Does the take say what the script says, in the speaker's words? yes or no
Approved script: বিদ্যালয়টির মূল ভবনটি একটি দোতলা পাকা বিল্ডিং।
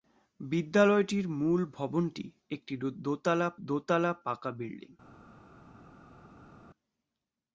no